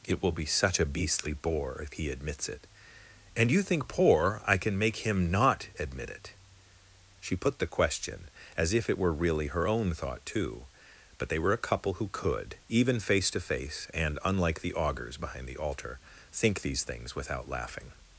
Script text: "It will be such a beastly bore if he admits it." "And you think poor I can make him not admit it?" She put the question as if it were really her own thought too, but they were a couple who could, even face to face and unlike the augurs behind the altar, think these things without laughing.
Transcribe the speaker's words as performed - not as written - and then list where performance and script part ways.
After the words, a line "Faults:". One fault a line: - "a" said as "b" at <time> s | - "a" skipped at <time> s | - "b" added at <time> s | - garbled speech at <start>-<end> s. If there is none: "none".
"It will be such a beastly bore if he admits it." "And you think poor I can make him not admit it?" She put the question as if it were really her own thought too, but they were a couple who could, even face to face and unlike the augurs behind the altar, think these things without laughing.
Faults:
none